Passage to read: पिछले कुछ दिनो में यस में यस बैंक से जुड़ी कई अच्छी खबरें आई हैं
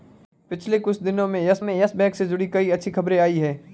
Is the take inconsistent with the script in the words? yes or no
no